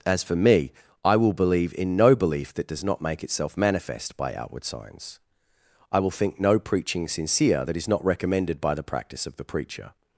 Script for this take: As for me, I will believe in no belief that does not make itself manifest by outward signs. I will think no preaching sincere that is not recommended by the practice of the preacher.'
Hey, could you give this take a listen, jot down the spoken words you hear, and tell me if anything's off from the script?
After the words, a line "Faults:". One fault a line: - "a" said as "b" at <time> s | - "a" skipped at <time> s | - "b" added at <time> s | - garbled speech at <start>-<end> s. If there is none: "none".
As for me, I will believe in no belief that does not make itself manifest by outward signs. I will think no preaching sincere that is not recommended by the practice of the preacher.'
Faults:
none